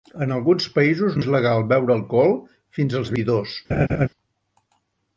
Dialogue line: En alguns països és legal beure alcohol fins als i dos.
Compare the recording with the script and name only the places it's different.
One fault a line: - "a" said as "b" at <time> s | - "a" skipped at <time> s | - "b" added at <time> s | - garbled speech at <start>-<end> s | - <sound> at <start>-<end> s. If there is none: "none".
- laugh at 3.7-4.1 s